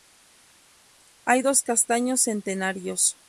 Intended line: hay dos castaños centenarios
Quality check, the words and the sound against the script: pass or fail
pass